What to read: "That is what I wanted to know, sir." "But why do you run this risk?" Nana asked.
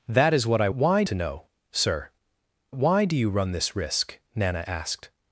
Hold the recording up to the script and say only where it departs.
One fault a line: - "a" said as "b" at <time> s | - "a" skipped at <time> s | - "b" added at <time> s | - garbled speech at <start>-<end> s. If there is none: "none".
- "wanted" said as "why" at 0.7 s
- "But" skipped at 2.1 s